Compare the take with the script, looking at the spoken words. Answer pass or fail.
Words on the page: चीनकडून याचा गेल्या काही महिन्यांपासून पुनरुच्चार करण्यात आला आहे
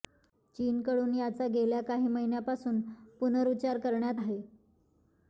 fail